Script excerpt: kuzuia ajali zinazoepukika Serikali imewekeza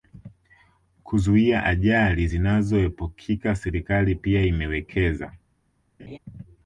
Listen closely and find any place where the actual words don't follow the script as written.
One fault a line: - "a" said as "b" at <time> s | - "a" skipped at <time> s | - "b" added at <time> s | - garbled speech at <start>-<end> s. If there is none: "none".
- "pia" added at 4.1 s